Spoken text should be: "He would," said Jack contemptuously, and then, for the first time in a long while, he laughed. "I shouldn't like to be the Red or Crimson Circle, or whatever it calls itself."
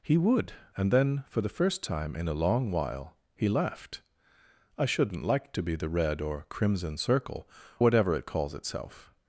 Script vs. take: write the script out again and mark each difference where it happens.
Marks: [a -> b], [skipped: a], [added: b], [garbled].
"He would," [skipped: said Jack contemptuously,] and then, for the first time in a long while, he laughed. "I shouldn't like to be the Red or Crimson Circle, [skipped: or] whatever it calls itself."